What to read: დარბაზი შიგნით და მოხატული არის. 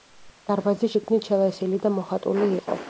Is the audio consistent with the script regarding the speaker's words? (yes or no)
no